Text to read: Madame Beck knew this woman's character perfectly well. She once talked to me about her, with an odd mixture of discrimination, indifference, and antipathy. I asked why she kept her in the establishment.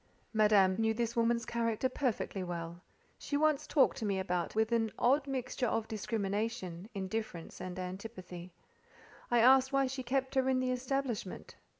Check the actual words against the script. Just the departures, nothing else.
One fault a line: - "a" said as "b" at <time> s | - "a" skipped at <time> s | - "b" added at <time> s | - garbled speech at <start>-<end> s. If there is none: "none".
- "Beck" skipped at 0.8 s
- "her" skipped at 4.5 s